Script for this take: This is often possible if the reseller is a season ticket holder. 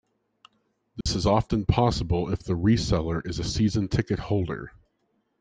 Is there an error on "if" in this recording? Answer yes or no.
no